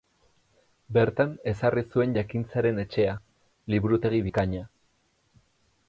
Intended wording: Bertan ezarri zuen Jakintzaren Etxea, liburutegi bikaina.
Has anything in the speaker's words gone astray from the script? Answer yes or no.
no